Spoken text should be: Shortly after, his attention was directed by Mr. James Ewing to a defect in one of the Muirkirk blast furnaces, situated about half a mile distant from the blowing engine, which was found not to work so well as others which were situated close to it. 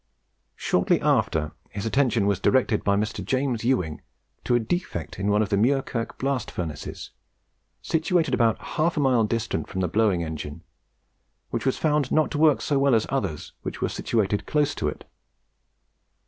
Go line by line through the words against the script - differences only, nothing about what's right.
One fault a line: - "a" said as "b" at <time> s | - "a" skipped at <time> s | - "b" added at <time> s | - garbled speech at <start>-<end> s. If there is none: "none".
none